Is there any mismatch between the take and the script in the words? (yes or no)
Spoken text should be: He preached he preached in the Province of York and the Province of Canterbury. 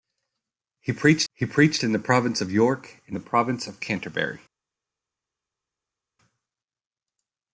no